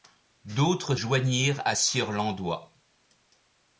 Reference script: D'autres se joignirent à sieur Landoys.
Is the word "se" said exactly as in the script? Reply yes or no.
no